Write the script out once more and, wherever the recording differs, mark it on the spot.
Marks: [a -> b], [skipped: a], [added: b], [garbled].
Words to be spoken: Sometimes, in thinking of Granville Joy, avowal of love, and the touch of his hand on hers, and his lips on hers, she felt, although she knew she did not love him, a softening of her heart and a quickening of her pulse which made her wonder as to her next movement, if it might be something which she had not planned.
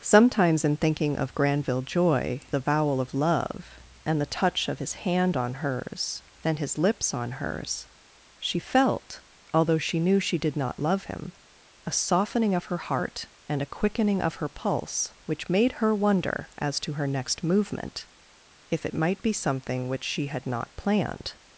Sometimes, in thinking of Granville Joy, avowal of love, and the touch of his hand on hers, and his lips on hers, she felt, although she knew she did not love him, a softening of her heart and a quickening of her pulse which made her wonder as to her next movement, if it might be something which she had not planned.